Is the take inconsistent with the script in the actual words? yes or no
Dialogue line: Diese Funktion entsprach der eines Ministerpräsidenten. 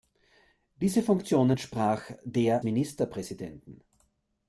yes